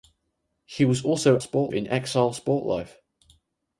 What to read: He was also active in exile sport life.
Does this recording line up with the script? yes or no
no